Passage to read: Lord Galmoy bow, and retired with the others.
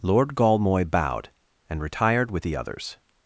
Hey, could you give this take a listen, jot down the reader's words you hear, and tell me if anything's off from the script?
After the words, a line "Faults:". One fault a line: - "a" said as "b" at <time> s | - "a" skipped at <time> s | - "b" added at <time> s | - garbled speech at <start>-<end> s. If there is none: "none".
Lord Galmoy bowed, and retired with the others.
Faults:
- "bow" said as "bowed" at 0.9 s